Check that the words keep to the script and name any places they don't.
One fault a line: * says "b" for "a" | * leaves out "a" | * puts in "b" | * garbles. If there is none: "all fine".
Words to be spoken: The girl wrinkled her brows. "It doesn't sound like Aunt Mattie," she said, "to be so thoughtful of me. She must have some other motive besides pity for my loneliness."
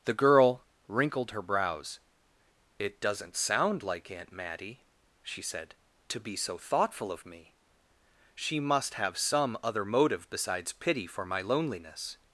all fine